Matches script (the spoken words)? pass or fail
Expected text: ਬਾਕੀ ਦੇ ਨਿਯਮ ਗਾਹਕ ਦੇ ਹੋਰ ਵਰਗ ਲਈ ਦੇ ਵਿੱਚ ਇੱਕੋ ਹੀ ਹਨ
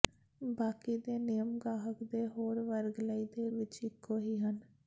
pass